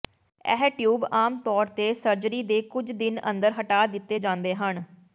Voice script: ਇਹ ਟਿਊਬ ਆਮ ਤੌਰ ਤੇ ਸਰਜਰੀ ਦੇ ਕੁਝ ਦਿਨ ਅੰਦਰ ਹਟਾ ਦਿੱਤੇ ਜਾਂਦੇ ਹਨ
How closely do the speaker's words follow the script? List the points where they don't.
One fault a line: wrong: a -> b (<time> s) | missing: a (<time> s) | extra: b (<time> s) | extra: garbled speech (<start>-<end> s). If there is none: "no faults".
no faults